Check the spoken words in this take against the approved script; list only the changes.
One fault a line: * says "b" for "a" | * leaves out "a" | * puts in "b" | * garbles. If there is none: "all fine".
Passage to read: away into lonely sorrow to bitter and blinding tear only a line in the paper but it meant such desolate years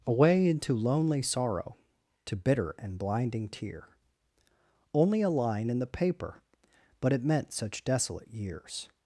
all fine